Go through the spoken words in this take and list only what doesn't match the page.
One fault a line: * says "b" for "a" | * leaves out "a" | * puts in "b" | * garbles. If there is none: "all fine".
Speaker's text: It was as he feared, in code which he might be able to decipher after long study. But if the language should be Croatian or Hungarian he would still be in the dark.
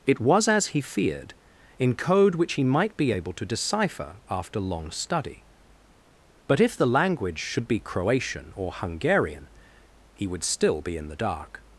all fine